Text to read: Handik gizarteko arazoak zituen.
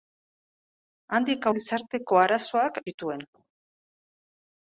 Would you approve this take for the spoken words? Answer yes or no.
yes